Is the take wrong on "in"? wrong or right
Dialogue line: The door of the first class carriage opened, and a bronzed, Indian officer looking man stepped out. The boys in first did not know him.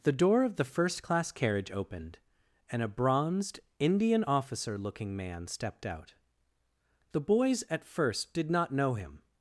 wrong